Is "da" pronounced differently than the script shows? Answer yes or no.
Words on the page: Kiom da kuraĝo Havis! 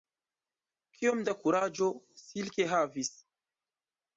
no